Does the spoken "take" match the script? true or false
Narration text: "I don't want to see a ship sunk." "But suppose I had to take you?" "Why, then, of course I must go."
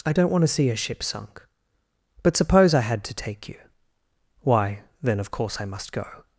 true